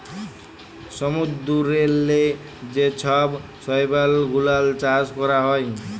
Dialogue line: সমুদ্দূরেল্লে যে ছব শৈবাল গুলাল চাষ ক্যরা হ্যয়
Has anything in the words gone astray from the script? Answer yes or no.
no